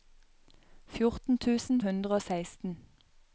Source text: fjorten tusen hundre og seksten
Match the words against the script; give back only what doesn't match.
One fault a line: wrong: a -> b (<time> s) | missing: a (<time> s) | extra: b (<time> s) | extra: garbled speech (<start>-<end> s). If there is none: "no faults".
no faults